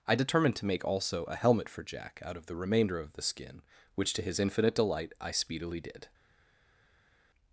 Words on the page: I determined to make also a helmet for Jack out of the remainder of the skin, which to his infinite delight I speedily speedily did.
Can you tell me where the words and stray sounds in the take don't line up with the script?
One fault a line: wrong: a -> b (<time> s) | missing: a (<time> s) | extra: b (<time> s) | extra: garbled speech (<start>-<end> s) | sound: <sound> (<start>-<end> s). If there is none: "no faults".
missing: speedily (5.8 s)